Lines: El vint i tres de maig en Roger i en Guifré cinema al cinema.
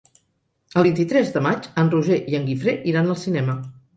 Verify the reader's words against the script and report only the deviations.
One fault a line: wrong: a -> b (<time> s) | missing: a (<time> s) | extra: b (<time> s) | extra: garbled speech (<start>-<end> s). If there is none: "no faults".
wrong: cinema -> iran (2.9 s)